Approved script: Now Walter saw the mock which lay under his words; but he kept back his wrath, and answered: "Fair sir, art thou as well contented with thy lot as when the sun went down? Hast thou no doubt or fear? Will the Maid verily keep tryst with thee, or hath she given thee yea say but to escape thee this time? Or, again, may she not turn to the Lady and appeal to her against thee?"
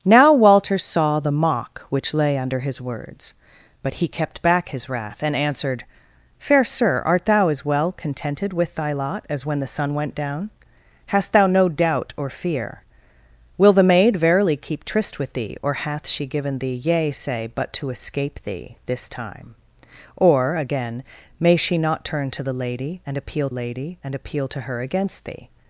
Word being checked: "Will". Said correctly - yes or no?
yes